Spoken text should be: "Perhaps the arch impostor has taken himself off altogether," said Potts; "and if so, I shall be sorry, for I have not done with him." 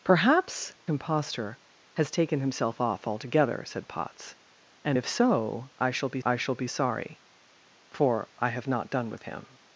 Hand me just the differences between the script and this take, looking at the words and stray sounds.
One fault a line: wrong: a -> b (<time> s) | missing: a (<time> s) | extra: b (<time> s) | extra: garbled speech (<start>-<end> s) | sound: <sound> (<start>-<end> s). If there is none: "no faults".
missing: the arch (0.8 s)
extra: I shall be (6.2 s)